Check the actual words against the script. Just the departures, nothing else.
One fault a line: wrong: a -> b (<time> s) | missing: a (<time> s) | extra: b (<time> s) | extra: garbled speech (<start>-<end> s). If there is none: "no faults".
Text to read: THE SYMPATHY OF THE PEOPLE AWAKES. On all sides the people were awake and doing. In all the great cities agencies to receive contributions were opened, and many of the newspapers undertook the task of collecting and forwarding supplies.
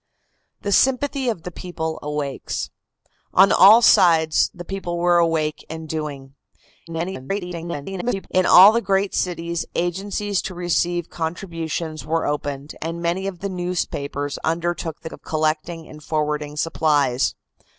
extra: garbled speech (6.9-8.3 s)
missing: task (15.1 s)